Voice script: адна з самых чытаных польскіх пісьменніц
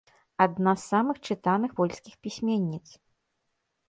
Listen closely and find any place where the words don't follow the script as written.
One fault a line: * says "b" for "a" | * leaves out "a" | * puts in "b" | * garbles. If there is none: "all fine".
all fine